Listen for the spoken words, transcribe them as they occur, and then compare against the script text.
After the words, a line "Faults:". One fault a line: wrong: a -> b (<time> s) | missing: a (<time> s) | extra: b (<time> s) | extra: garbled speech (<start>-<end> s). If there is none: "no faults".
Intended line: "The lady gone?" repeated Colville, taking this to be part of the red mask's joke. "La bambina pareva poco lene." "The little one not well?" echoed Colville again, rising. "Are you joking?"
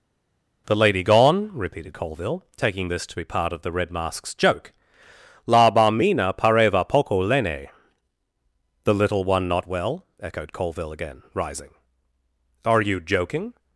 "The lady gone?" repeated Colville, taking this to be part of the red mask's joke. "La bambina pareva poco lene." "The little one not well?" echoed Colville again, rising. "Are you joking?"
Faults:
no faults